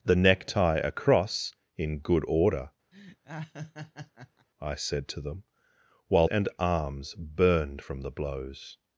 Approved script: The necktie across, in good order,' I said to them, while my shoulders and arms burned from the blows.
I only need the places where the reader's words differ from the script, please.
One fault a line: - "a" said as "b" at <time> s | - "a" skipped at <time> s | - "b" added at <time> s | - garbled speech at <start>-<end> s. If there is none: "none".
- "my shoulders" skipped at 6.3 s